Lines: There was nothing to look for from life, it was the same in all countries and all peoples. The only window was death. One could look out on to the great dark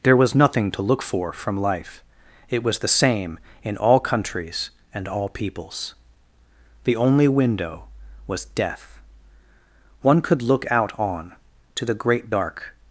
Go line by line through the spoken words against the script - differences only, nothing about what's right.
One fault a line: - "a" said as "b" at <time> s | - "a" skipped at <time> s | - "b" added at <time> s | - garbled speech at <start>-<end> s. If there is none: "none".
none